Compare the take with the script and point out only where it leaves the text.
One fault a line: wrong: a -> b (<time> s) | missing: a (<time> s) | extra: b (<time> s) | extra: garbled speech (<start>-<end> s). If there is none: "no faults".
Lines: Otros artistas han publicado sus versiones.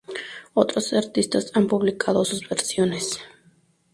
no faults